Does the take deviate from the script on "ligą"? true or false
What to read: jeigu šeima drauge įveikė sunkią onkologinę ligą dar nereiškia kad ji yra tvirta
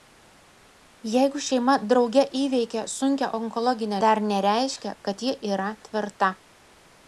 true